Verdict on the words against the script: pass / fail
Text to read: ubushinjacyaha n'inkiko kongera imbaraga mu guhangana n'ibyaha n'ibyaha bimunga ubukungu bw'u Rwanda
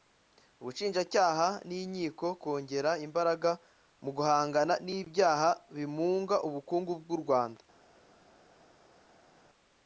fail